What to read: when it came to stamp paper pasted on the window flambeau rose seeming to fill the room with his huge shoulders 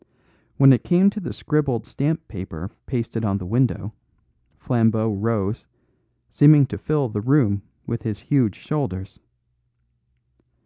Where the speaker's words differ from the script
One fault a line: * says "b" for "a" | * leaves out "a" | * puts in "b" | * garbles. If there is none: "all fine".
* puts in "the scribbled"